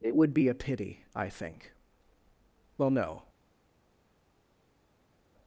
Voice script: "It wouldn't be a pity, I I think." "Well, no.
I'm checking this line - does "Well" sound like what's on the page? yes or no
yes